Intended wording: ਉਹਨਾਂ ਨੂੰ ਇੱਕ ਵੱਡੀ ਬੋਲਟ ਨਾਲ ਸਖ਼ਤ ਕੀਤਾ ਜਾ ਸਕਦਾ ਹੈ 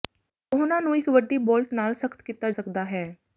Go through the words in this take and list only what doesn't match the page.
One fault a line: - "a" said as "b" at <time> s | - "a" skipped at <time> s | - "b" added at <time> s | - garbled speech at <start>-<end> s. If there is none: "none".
- "ਜਾ" skipped at 2.5 s